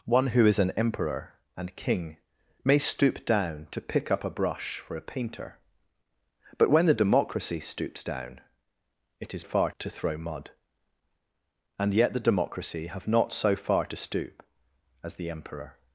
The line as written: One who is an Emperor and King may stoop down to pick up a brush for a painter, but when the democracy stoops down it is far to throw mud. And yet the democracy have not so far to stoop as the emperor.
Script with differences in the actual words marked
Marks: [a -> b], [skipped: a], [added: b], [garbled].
One who is an Emperor and King may stoop down to pick up a brush for a painter, but when the democracy stoops down it is far to throw mud. And yet the democracy have not so far to stoop as the emperor.